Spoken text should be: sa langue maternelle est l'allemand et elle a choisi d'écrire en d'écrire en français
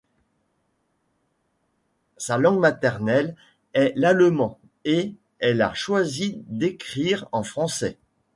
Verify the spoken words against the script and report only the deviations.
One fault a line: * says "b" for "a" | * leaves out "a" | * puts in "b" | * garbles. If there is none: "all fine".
* leaves out "d'écrire en"